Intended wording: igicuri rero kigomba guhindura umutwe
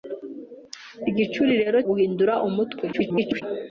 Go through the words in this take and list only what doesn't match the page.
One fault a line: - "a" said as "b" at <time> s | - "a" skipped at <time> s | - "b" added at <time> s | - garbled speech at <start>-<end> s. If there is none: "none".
- "kigomba" skipped at 1.8 s
- garbled speech at 2.9-3.4 s